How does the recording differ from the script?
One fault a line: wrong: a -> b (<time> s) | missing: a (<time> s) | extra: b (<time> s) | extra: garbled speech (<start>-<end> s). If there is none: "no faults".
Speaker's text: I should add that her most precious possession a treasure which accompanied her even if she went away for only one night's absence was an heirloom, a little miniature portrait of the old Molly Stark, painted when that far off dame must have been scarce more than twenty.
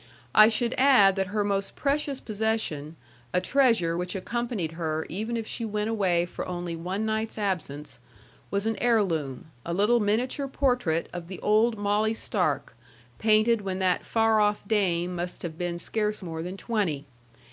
no faults